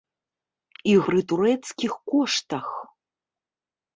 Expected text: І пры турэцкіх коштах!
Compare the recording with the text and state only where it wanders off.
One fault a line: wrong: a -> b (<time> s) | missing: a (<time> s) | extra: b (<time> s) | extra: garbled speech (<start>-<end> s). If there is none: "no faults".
no faults